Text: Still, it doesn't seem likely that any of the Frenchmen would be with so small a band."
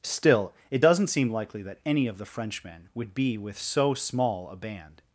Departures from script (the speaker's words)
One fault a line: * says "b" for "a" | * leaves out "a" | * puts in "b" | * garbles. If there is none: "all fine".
all fine